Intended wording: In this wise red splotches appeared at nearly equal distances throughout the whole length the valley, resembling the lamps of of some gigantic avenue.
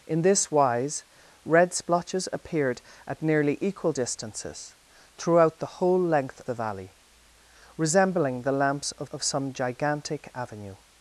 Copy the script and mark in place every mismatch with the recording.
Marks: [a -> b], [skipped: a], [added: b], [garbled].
In this wise red splotches appeared at nearly equal distances throughout the whole length the valley, resembling the lamps of of some gigantic avenue.